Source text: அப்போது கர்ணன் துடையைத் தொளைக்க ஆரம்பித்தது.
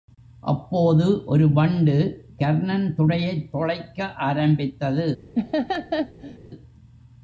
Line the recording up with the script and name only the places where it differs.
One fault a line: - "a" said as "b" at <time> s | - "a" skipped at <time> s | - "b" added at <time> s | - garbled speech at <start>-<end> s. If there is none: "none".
- "ஒரு வண்டு" added at 1.2 s